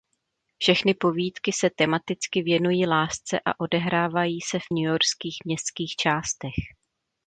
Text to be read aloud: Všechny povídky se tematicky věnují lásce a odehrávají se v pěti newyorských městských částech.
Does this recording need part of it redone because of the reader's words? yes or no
yes